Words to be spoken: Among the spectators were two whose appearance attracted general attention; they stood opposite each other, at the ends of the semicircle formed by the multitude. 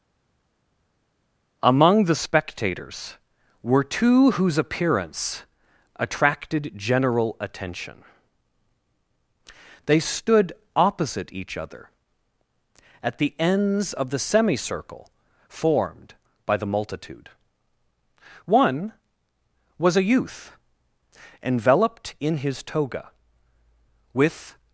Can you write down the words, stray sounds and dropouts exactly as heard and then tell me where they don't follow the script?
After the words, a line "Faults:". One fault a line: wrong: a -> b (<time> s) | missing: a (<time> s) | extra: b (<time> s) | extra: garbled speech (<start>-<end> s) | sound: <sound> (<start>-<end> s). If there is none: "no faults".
Among the spectators were two whose appearance attracted general attention; they stood opposite each other, at the ends of the semicircle formed by the multitude. One was a youth, enveloped in his toga, with
Faults:
extra: One was a youth enveloped in his toga with (18.4 s)